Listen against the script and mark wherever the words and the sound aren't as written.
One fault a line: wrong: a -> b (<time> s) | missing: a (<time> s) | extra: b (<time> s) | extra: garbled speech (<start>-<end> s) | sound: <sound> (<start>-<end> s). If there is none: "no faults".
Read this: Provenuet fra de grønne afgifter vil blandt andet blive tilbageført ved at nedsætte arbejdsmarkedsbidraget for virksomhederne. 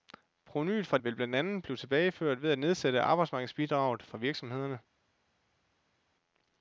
missing: de grønne afgifter (1.0 s)